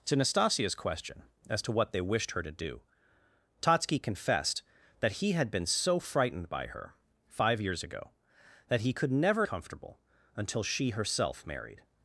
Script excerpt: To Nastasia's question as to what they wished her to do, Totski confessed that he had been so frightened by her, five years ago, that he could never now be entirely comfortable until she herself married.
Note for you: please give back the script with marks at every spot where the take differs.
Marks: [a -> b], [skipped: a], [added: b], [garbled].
To Nastasia's question as to what they wished her to do, Totski confessed that he had been so frightened by her, five years ago, that he could never [skipped: now be entirely] comfortable until she herself married.